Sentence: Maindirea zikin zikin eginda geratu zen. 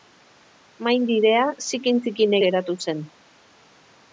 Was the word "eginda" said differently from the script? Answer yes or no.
yes